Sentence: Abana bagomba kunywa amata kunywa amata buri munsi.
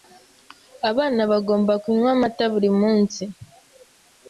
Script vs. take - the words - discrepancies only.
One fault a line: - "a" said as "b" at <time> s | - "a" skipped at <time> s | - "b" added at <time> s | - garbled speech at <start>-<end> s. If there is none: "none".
- "kunywa amata" skipped at 2.5 s